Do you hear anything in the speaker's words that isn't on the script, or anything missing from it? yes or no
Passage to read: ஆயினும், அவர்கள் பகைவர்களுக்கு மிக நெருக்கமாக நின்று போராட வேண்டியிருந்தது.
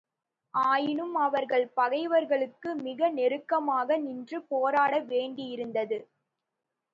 no